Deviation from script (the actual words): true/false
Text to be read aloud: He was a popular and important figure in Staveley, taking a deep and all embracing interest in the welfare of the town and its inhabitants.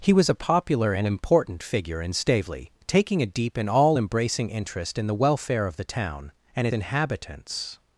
true